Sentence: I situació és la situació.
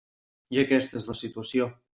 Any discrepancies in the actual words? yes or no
yes